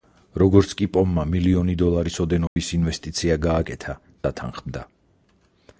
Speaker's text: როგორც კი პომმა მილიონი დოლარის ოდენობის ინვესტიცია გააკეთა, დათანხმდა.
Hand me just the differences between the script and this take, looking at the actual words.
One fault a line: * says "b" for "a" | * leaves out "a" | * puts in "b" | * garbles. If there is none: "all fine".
all fine